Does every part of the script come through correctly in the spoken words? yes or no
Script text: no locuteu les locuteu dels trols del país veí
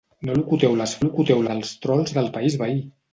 yes